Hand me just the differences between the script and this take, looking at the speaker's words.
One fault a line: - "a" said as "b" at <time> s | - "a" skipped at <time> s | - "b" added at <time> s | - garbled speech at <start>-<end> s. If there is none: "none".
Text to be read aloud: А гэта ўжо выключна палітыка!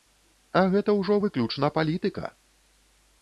none